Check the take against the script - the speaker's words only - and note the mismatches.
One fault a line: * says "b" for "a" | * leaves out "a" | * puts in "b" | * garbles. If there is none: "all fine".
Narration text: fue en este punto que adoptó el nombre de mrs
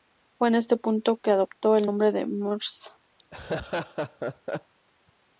all fine